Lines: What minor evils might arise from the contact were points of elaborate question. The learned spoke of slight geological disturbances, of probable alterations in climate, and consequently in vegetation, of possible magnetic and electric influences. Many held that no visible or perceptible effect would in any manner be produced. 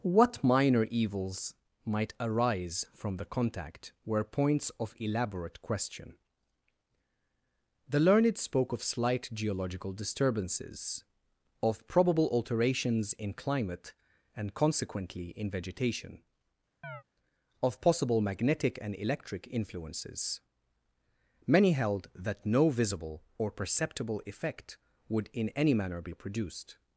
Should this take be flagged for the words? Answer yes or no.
no